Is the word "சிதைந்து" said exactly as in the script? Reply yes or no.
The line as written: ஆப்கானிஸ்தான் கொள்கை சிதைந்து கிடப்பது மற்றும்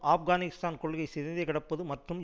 yes